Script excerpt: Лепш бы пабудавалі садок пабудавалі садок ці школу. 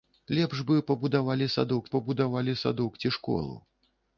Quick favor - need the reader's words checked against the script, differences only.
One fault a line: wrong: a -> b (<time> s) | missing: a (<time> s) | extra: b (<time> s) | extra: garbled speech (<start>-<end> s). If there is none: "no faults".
no faults